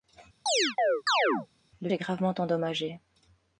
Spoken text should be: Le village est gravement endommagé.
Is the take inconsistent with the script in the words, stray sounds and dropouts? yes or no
yes